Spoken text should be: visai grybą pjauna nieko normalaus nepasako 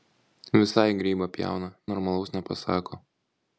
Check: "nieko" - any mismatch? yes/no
yes